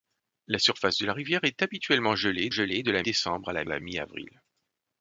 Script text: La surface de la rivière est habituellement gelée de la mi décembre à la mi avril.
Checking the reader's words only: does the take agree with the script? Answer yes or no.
no